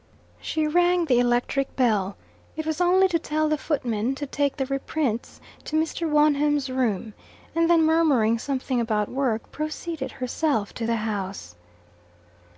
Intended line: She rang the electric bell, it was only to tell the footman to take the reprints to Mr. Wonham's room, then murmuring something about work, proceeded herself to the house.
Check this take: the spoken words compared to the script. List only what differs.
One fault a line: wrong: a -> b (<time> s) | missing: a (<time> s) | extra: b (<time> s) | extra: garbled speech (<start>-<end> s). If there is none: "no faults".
extra: and (7.5 s)